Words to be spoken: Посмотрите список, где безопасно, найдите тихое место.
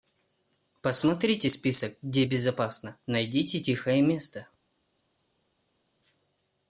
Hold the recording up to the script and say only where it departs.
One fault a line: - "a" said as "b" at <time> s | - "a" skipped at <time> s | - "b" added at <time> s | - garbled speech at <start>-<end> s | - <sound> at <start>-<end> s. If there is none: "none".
none